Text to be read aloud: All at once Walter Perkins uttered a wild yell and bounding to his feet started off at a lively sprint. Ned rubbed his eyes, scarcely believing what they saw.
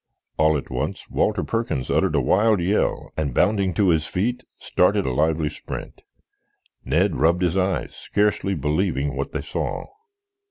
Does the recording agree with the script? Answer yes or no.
no